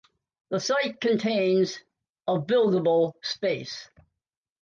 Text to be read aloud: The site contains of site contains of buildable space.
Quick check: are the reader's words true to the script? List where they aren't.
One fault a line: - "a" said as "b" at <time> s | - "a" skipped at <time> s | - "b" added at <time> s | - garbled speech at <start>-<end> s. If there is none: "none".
- "site contains of" skipped at 2.5 s